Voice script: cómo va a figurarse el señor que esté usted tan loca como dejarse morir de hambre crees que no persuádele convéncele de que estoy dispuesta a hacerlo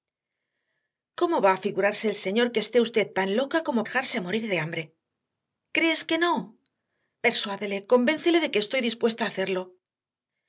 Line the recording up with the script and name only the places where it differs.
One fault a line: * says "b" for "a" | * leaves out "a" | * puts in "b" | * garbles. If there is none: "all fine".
all fine